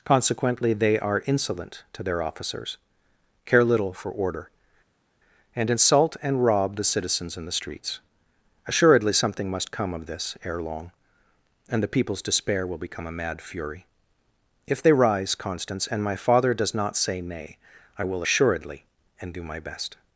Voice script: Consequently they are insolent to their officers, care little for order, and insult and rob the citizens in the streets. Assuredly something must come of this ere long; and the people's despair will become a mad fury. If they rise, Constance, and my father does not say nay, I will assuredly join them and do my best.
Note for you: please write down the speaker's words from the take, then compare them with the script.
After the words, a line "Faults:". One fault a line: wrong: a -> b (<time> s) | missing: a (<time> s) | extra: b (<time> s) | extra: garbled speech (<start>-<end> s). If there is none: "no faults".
Consequently they are insolent to their officers, care little for order, and insult and rob the citizens in the streets. Assuredly something must come of this ere long; and the people's despair will become a mad fury. If they rise, Constance, and my father does not say nay, I will assuredly and do my best.
Faults:
missing: join them (18.8 s)